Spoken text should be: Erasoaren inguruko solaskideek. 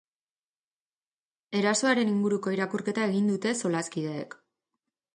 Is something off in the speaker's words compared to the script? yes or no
yes